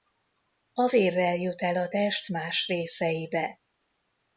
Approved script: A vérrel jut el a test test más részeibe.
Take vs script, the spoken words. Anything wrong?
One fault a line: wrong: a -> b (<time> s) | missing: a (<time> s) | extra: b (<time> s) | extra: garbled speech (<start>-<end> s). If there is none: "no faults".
missing: test (2.3 s)